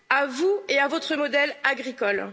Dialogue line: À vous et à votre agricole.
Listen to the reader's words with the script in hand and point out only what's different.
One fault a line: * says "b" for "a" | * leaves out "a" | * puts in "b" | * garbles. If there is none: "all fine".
* puts in "modèle"